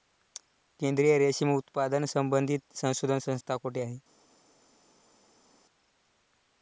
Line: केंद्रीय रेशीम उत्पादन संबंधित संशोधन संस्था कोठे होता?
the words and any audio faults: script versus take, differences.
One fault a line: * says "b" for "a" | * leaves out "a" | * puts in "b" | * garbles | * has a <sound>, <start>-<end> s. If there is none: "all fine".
* says "आहे" for "होता"